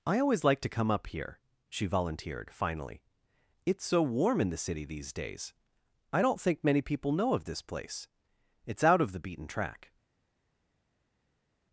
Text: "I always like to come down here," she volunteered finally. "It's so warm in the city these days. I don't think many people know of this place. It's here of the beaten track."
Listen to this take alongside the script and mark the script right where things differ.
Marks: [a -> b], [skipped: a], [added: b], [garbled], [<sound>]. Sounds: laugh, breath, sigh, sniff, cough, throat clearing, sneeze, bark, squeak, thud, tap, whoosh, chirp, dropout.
"I always like to come [down -> up] here," she volunteered finally. "It's so warm in the city these days. I don't think many people know of this place. It's [here -> out] of the beaten track."